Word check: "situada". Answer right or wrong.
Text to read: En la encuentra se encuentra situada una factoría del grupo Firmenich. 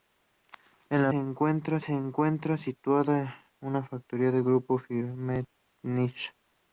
right